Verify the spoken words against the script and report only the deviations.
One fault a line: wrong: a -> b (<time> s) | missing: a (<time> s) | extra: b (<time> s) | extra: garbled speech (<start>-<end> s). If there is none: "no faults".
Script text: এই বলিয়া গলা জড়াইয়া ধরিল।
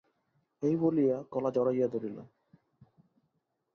no faults